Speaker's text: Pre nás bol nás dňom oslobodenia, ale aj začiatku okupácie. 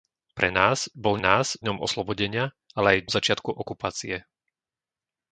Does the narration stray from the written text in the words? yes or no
no